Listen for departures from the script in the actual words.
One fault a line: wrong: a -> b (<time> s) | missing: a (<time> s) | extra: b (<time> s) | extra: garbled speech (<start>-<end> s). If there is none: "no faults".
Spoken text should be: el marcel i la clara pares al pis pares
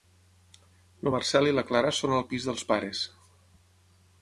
wrong: pares -> són (2.0 s)
extra: dels (2.5 s)